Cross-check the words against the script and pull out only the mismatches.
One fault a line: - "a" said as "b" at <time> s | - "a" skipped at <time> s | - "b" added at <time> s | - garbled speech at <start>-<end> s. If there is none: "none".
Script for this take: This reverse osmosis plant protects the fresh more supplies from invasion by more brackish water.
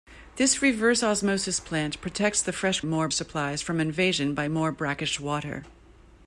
none